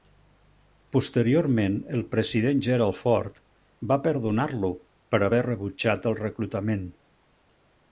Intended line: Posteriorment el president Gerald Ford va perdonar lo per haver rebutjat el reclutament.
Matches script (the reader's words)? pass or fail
pass